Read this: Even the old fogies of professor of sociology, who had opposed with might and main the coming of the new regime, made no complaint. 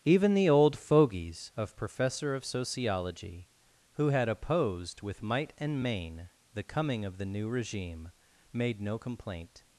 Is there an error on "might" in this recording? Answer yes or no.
no